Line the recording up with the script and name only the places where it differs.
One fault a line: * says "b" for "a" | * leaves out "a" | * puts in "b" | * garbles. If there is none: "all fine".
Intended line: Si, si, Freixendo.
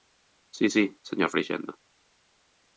* puts in "señor"